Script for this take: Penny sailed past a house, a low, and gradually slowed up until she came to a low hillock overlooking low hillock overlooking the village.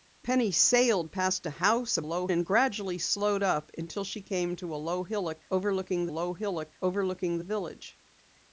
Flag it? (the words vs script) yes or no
no